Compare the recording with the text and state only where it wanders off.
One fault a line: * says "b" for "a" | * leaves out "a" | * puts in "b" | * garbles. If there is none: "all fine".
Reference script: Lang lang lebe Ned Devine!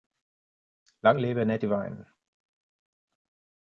* leaves out "lang"